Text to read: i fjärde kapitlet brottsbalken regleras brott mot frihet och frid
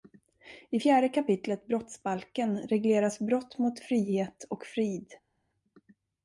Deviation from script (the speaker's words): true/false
false